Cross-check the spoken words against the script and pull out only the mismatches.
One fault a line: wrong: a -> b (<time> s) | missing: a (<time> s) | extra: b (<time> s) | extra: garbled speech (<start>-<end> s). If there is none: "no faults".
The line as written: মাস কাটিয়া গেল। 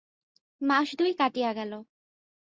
extra: দুই (1.0 s)